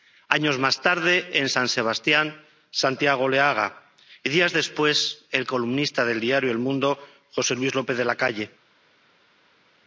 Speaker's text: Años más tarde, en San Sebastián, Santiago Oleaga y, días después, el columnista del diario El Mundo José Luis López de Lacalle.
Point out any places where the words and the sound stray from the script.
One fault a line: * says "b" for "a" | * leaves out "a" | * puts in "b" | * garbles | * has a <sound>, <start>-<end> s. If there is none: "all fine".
all fine